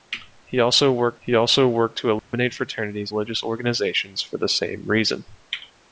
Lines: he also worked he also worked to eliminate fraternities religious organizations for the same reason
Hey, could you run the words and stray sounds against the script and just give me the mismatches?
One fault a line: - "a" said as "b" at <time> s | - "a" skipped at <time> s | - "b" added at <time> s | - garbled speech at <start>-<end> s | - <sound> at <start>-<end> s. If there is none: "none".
- dropout at 2.2-2.3 s